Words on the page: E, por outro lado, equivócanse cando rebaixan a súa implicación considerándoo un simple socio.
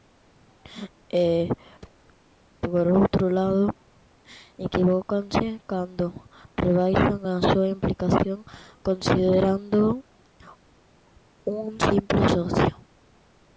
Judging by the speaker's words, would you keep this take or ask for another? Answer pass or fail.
pass